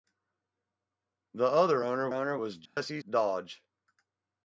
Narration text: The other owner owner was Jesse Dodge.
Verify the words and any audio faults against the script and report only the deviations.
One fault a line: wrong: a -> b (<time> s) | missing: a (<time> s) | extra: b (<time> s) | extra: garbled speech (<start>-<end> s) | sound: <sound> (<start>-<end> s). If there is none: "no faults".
sound: dropout (2.7-2.8 s)